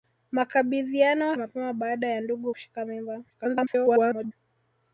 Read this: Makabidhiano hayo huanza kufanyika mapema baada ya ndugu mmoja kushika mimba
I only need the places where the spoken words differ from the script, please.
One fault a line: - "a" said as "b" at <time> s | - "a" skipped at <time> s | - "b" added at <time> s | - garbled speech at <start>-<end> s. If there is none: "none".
- "hayo huanza kufanyika" skipped at 1.4 s
- "mmoja" skipped at 2.5 s
- garbled speech at 3.3-4.3 s